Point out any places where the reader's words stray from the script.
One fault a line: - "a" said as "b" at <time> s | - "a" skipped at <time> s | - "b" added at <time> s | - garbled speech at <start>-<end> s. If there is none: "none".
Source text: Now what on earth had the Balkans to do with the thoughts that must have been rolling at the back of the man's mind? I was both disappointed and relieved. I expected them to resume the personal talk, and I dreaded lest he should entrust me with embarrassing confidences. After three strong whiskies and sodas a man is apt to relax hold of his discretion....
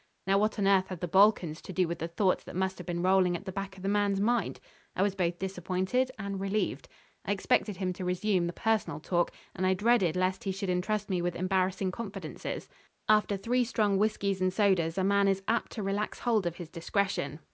- "them" said as "him" at 7.8 s